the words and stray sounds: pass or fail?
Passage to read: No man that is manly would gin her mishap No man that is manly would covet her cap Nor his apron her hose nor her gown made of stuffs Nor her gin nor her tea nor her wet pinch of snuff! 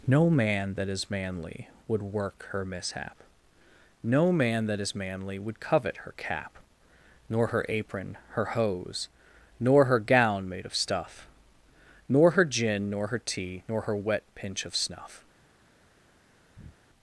fail